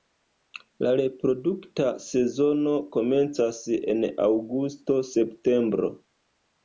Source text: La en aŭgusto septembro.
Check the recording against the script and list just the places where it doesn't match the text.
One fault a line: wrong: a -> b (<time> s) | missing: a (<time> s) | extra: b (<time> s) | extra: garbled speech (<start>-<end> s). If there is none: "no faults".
extra: reprodukta sezono komencas (1.0 s)